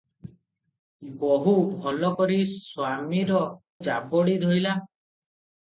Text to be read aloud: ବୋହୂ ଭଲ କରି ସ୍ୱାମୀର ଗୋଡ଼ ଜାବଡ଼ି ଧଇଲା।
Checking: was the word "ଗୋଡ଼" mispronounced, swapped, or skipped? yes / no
yes